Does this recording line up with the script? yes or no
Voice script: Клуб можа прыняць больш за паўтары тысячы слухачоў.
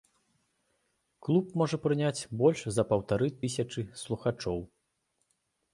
yes